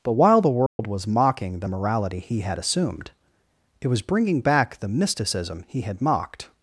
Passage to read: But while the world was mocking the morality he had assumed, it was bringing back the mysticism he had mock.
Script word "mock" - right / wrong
wrong